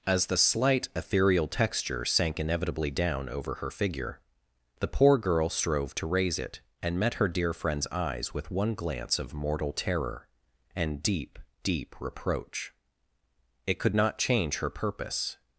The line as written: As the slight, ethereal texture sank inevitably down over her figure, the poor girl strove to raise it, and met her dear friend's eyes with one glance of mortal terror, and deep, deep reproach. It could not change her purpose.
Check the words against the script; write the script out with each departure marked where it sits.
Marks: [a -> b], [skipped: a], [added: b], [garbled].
As the slight, ethereal texture sank inevitably down over her figure, the poor girl strove to raise it, and met her dear friend's eyes with one glance of mortal terror, and deep, deep reproach. It could not change her purpose.